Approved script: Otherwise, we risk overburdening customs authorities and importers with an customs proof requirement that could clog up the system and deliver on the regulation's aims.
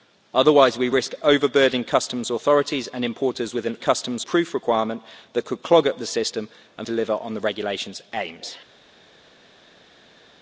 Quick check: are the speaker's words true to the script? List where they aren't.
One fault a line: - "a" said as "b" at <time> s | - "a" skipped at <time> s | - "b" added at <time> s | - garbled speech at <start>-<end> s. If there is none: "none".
none